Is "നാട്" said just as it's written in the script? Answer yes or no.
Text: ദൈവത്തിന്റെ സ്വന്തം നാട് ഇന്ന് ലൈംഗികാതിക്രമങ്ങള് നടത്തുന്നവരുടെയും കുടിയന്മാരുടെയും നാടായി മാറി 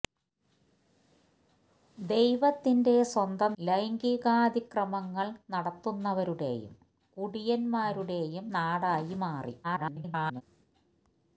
no